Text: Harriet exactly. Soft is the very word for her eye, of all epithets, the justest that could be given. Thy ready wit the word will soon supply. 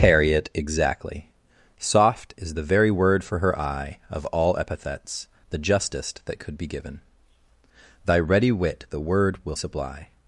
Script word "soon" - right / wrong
wrong